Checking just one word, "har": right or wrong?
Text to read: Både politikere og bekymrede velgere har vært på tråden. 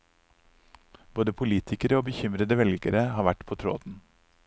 right